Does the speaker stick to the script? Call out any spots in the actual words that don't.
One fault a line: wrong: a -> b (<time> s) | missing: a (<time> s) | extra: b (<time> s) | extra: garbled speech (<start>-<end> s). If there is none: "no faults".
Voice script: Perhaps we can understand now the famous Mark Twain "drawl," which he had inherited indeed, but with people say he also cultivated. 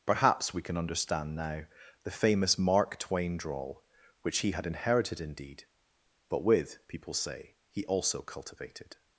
no faults